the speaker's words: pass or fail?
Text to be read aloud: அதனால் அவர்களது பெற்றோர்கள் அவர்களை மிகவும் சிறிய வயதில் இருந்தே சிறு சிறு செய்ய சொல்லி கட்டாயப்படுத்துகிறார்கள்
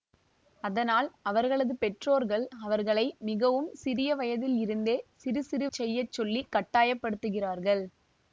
pass